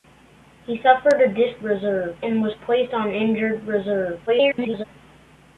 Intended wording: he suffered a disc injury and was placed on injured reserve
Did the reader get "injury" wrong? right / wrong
wrong